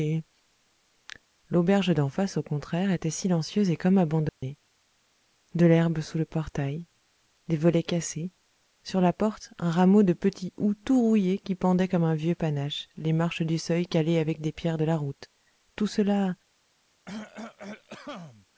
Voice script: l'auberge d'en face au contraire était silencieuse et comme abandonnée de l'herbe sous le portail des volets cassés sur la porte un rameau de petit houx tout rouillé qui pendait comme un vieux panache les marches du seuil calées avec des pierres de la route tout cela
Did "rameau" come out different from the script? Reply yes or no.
no